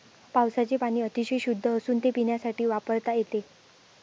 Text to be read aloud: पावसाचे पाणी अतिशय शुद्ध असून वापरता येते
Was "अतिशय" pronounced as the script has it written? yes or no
yes